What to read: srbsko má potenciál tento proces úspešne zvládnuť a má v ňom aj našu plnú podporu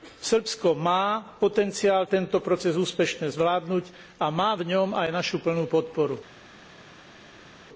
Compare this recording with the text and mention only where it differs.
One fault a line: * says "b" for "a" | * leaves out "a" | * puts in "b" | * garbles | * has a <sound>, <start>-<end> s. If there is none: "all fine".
all fine